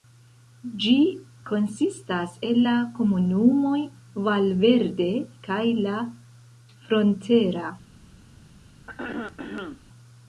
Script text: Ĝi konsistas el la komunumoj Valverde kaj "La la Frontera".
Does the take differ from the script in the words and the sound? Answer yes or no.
yes